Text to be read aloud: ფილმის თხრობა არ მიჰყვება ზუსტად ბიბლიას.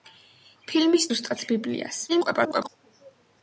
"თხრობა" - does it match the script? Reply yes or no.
no